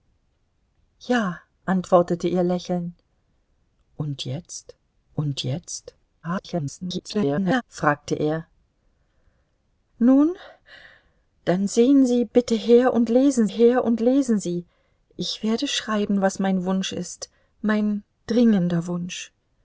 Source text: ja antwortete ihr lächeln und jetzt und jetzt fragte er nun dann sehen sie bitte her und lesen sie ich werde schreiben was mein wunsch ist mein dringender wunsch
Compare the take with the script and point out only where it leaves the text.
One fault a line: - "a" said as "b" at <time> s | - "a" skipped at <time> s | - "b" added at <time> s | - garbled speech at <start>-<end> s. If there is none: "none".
- garbled speech at 6.2-7.6 s
- "her und lesen" added at 13.4 s